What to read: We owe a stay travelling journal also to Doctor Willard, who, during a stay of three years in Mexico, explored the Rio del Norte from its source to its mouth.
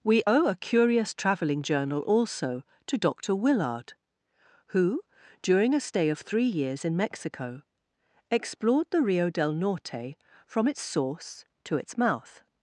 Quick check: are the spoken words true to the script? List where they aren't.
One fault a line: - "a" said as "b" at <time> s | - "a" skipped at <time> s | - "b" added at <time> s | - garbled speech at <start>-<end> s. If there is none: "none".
- "stay" said as "curious" at 0.5 s